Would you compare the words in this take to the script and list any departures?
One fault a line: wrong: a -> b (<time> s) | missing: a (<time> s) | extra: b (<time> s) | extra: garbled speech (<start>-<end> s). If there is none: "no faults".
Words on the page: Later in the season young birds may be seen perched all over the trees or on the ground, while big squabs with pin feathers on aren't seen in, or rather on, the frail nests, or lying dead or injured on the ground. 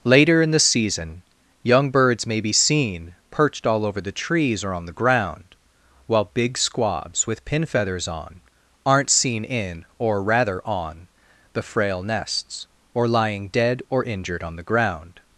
no faults